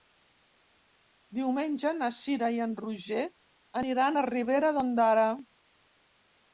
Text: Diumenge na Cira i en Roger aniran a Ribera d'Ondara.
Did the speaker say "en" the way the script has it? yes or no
yes